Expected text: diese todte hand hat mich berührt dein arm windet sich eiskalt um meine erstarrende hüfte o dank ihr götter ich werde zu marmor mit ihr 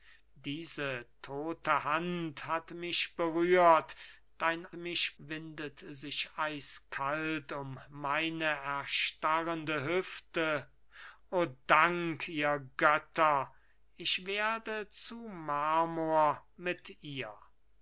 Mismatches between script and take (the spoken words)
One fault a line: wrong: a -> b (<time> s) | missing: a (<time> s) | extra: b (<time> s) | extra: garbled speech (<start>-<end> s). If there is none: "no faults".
wrong: arm -> mich (4.7 s)